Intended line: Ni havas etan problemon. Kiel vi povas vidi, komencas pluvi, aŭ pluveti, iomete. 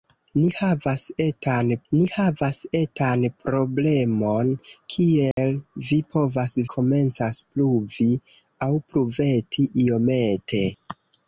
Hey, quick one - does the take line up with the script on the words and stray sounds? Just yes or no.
no